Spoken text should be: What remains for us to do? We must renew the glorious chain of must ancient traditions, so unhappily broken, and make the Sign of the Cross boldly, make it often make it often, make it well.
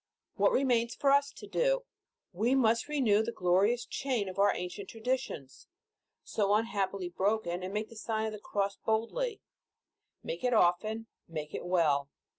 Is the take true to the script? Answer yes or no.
no